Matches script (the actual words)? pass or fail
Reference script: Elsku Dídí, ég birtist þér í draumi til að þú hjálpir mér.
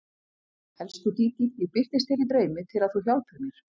pass